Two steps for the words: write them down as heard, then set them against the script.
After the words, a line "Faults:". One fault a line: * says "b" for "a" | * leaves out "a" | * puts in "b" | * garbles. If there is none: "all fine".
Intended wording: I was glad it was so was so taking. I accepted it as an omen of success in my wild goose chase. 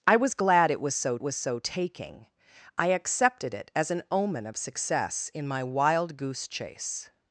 I was glad it was so was so taking. I accepted it as an omen of success in my wild goose chase.
Faults:
all fine